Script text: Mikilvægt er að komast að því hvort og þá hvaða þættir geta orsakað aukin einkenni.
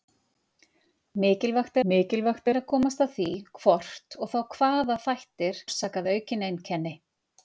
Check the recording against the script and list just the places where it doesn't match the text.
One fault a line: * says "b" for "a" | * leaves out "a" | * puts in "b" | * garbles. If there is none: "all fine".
* puts in "mikilvægt"
* leaves out "geta"